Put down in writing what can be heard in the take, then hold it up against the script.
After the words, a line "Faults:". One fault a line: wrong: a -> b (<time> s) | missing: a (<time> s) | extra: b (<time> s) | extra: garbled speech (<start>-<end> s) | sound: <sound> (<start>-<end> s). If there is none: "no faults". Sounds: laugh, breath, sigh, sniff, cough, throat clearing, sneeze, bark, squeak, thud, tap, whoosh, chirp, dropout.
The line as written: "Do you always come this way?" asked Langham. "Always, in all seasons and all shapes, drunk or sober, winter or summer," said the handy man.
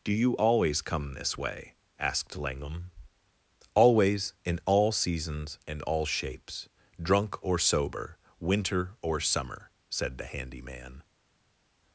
"Do you always come this way?" asked Langham. "Always, in all seasons and all shapes, drunk or sober, winter or summer," said the handy man.
Faults:
no faults